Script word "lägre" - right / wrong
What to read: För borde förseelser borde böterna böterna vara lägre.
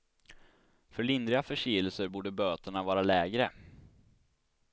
right